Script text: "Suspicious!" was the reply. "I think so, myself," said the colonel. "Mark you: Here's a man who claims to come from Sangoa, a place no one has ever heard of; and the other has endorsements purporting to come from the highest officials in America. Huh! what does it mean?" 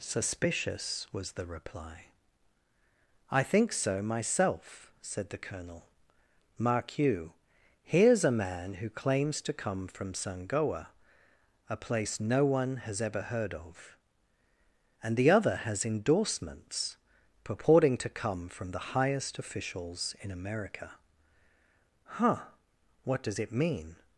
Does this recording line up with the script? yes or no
yes